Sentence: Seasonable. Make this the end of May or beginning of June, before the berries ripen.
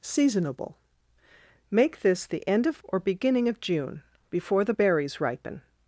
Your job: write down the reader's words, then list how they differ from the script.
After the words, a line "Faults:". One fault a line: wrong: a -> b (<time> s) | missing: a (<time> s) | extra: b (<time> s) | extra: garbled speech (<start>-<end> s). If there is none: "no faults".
Seasonable. Make this the end of Or beginning of June, before the berries ripen.
Faults:
missing: May (2.8 s)